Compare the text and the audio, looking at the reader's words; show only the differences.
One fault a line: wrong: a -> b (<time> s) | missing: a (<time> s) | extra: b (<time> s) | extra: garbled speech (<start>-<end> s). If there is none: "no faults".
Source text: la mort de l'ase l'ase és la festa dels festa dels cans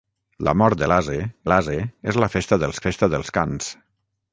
no faults